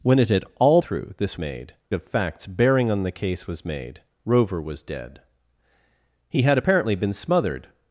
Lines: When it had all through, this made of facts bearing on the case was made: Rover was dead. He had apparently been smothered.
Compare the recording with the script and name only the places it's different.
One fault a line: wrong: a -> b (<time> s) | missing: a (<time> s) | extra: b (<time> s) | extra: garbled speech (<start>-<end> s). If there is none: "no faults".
no faults